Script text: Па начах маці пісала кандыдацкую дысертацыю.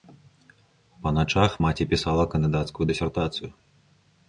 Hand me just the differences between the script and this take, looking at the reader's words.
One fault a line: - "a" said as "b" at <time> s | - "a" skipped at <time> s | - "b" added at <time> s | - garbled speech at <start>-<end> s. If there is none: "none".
none